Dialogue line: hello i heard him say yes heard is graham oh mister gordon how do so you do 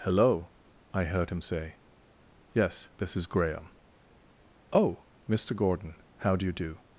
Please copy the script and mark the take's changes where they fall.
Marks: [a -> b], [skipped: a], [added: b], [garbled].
hello i heard him say yes [heard -> this] is graham oh mister gordon how do [skipped: so] you do